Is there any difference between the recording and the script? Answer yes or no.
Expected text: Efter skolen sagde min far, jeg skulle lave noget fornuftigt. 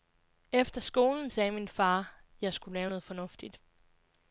no